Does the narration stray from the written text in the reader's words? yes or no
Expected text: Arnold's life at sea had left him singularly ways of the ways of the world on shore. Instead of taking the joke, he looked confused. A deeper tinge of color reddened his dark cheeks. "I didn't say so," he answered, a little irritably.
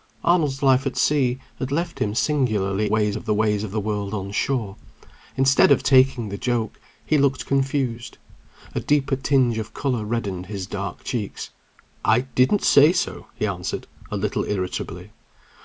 no